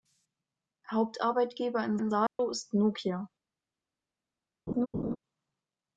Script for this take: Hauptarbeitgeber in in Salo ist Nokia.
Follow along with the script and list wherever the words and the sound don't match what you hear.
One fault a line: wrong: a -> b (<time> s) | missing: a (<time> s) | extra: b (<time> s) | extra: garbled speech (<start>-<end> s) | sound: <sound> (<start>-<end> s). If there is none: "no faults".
sound: dropout (2.3-2.4 s)
sound: laugh (4.7-5.2 s)